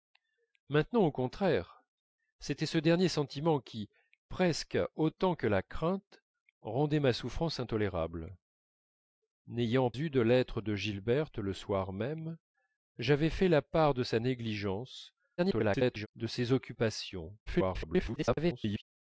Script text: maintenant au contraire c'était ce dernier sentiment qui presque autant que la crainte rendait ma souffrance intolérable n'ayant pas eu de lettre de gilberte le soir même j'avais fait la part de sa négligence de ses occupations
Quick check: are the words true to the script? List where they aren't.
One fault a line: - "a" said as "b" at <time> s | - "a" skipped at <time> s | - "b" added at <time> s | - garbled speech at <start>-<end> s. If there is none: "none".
- "pas" skipped at 9.9 s
- garbled speech at 15.4-16.1 s
- garbled speech at 17.5-18.8 s